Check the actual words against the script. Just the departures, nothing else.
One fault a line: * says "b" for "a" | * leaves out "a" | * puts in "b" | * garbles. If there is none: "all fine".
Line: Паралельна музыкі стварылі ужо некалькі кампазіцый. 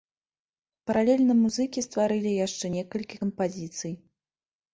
* says "яшчэ" for "ужо"